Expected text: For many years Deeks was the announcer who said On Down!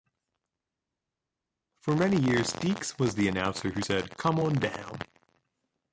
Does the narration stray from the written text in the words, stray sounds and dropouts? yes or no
yes